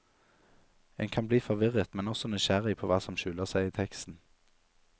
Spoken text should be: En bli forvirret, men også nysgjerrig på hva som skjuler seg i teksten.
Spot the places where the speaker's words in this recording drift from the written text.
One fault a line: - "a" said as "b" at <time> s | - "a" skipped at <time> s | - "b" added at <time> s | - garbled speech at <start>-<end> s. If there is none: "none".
- "kan" added at 1.1 s